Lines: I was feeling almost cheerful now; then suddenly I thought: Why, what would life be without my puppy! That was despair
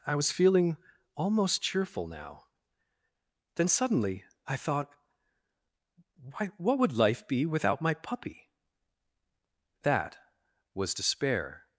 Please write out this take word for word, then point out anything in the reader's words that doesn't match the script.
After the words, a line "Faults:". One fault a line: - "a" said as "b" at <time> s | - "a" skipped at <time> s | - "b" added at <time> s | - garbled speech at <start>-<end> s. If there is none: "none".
I was feeling almost cheerful now; then suddenly I thought: Why, what would life be without my puppy! That was despair
Faults:
none